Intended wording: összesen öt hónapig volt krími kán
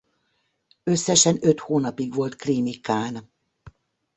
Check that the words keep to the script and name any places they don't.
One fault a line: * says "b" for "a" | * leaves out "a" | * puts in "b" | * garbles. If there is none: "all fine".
all fine